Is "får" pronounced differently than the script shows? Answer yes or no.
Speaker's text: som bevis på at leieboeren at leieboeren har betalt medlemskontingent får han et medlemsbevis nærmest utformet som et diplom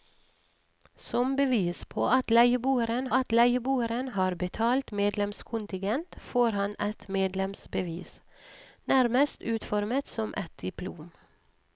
no